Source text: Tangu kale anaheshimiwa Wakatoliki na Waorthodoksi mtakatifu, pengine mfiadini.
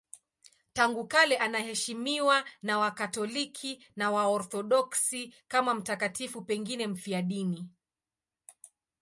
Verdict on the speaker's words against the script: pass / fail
fail